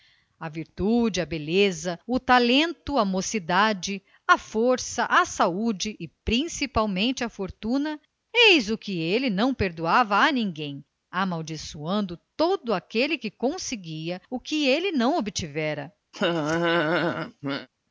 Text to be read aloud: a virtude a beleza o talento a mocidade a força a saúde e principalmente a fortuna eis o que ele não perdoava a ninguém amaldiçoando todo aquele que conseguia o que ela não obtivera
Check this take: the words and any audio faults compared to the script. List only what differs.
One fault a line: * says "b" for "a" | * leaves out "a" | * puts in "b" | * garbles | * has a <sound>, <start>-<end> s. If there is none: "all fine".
* says "ele" for "ela"
* has a laugh, 16.1-17.7 s